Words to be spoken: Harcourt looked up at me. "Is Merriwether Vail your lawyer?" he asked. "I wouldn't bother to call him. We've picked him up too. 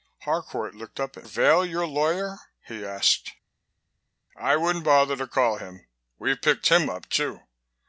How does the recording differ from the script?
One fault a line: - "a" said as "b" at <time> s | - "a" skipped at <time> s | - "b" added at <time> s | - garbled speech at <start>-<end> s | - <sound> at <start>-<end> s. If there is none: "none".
- "me Is Merriwether" skipped at 1.3 s